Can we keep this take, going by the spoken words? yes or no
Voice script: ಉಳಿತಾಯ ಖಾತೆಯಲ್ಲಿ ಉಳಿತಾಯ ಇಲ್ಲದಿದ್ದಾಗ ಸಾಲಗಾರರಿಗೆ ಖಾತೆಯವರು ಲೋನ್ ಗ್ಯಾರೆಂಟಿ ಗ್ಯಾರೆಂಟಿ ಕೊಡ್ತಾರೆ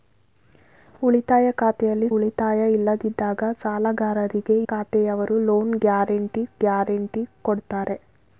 yes